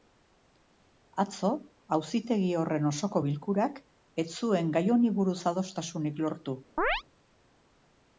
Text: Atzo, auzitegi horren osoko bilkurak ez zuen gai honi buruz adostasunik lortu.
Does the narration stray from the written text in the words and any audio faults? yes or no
yes